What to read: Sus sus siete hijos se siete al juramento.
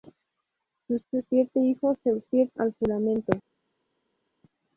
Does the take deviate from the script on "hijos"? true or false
false